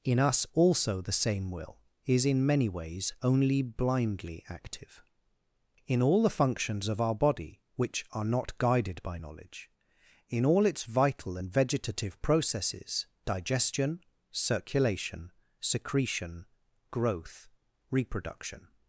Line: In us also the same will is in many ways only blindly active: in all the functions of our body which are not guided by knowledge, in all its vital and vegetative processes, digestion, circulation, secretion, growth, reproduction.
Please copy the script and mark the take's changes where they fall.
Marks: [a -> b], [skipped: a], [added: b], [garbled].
In us also the same will is in many ways only blindly active: in all the functions of our body which are not guided by knowledge, in all its vital and vegetative processes, digestion, circulation, secretion, growth, reproduction.